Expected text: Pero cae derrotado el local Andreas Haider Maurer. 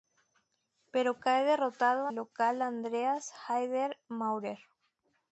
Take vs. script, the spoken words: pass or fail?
pass